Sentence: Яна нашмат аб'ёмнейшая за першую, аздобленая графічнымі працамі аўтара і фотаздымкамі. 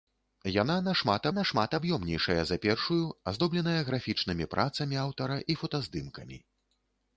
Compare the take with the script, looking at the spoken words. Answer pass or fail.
fail